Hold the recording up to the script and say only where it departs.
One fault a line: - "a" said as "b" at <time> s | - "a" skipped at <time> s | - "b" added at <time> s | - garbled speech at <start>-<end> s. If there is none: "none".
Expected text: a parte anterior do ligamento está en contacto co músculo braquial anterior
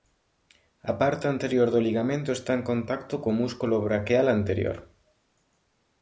none